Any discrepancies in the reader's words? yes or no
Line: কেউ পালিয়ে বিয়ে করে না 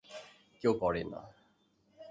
yes